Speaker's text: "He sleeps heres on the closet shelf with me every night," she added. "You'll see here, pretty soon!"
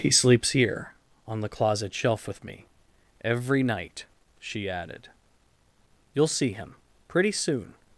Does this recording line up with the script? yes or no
no